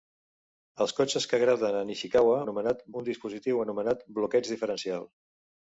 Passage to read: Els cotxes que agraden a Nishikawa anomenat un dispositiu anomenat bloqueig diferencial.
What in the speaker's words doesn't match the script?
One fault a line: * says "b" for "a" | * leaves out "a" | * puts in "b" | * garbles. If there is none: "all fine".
all fine